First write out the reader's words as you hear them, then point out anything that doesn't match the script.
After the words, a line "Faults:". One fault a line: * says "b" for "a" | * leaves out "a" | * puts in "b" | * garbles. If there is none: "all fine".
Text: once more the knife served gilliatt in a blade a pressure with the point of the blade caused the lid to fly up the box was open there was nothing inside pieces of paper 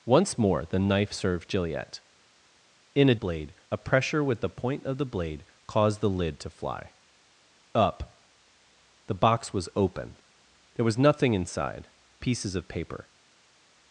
once more the knife served gilliatt in a blade a pressure with the point of the blade caused the lid to fly up the box was open there was nothing inside pieces of paper
Faults:
all fine